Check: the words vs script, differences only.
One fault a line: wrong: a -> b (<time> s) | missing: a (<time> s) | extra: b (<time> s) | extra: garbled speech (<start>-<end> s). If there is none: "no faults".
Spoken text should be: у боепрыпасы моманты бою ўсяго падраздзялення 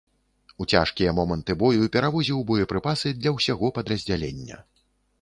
wrong: боепрыпасы -> цяжкія (0.7 s)
extra: перавозіў боепрыпасы для (2.0 s)